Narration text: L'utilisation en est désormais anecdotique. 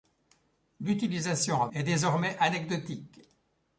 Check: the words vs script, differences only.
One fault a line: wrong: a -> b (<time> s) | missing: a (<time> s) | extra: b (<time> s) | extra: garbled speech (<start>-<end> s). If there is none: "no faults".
no faults